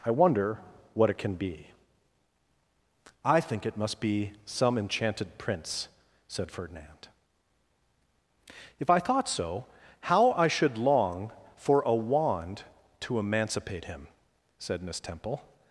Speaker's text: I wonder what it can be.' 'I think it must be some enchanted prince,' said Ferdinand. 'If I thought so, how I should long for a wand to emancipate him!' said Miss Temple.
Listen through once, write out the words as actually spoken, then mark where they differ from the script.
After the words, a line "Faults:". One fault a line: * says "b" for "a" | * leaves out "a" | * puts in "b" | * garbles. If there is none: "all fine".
I wonder what it can be.' 'I think it must be some enchanted prince,' said Ferdinand. 'If I thought so, how I should long for a wand to emancipate him!' said Miss Temple.
Faults:
all fine